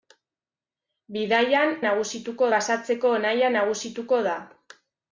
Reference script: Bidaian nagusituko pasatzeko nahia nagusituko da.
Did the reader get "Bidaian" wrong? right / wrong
right